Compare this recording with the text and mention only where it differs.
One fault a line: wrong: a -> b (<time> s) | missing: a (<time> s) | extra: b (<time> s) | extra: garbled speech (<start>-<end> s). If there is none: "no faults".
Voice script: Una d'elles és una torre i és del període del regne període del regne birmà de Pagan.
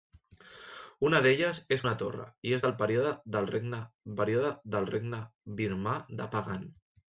no faults